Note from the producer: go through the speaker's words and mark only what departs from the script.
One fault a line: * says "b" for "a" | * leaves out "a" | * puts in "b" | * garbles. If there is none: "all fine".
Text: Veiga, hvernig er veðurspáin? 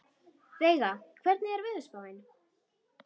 all fine